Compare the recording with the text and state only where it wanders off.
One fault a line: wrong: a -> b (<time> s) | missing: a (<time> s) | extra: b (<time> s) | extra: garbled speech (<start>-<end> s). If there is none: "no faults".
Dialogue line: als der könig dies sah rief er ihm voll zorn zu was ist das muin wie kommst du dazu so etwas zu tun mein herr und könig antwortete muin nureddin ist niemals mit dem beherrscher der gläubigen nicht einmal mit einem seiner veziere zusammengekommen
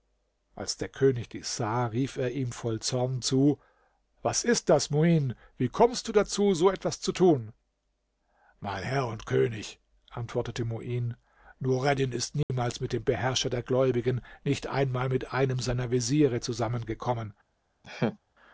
no faults